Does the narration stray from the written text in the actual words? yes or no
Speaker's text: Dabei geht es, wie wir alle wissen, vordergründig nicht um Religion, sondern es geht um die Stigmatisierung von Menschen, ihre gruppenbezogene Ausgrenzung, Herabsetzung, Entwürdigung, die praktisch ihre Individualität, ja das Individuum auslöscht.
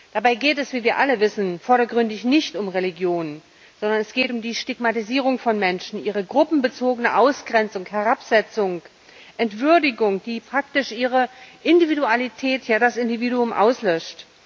no